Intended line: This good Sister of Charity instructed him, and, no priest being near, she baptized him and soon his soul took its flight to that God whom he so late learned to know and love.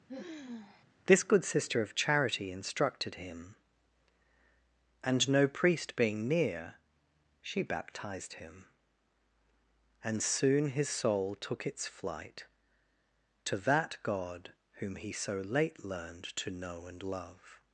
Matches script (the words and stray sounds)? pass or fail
fail